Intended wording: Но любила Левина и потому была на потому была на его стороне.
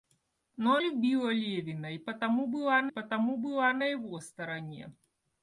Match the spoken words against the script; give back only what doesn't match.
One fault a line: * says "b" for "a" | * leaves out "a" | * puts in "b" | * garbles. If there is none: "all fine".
all fine